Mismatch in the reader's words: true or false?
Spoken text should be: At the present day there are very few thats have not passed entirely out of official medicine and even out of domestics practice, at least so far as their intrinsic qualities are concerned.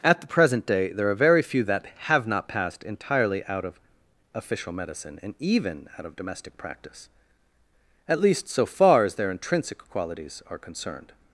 true